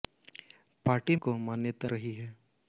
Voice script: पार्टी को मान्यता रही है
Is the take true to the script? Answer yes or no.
yes